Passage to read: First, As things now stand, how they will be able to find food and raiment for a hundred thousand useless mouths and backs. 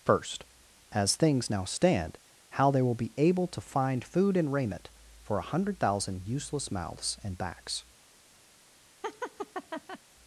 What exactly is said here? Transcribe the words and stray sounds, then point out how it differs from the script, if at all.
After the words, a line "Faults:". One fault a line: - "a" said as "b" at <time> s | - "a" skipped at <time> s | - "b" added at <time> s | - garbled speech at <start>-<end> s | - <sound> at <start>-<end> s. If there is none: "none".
First, As things now stand, how they will be able to find food and raiment for a hundred thousand useless mouths and backs.
Faults:
- laugh at 9.0-10.0 s